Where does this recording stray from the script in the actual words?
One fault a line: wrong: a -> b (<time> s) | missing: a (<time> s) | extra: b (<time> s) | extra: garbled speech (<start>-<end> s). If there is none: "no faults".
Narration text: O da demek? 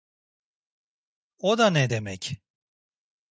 extra: ne (1.7 s)